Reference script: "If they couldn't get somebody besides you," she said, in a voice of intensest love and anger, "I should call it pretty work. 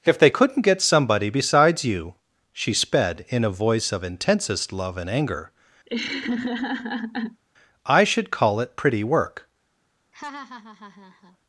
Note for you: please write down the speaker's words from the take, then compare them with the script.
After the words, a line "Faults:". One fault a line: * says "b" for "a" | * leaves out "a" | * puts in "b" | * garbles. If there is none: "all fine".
"If they couldn't get somebody besides you," she sped, in a voice of intensest love and anger, "I should call it pretty work.
Faults:
* says "sped" for "said"